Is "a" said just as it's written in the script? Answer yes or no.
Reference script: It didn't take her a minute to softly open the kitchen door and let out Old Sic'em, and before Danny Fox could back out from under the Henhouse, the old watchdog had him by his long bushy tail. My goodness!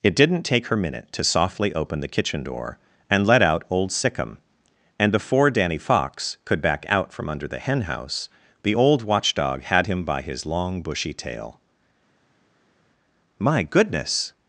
no